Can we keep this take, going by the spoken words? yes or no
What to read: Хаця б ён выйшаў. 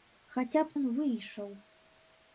yes